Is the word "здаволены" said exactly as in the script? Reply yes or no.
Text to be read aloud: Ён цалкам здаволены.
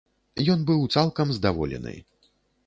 yes